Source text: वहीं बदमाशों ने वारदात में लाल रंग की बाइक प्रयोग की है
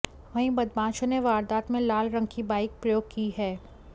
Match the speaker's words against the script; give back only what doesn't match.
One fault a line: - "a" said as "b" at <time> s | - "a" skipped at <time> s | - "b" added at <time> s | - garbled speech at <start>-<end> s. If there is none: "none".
none